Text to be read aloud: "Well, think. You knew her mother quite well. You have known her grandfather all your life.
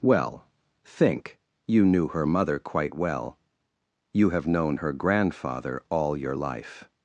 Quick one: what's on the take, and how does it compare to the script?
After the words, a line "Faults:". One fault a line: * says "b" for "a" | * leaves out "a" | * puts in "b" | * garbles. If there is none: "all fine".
"Well, think. You knew her mother quite well. You have known her grandfather all your life.
Faults:
all fine